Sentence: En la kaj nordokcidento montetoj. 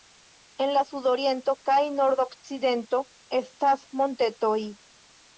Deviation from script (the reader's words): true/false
true